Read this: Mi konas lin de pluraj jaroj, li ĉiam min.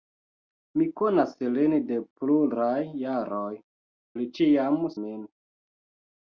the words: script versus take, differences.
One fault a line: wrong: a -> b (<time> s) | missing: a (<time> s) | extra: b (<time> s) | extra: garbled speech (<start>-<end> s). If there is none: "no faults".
no faults